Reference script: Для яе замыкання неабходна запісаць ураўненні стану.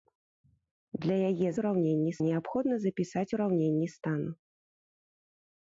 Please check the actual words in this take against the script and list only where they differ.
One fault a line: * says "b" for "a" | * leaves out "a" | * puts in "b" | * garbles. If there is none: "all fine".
* says "ураўненні" for "замыкання"